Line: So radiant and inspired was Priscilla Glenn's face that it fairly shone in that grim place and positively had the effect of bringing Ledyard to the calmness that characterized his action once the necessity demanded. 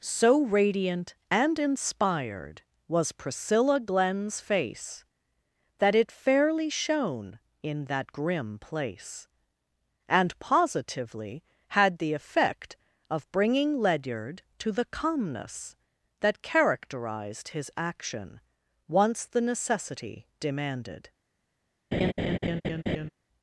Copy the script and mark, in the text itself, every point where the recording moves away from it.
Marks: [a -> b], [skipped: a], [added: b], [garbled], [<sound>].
So radiant and inspired was Priscilla Glenn's face that it fairly shone in that grim place and positively had the effect of bringing Ledyard to the calmness that characterized his action once the necessity demanded. [laugh]